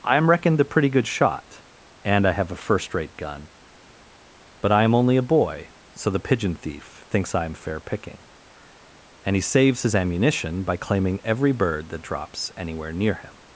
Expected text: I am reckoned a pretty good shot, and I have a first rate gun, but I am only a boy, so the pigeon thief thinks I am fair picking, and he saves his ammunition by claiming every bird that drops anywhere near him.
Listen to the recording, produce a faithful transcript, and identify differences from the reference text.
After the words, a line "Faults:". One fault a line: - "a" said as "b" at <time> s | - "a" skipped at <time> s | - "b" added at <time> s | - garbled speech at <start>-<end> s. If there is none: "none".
I am reckoned a pretty good shot, and I have a first rate gun, but I am only a boy, so the pigeon thief thinks I am fair picking, and he saves his ammunition by claiming every bird that drops anywhere near him.
Faults:
none